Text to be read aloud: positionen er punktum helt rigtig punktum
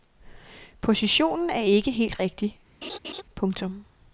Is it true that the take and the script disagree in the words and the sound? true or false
true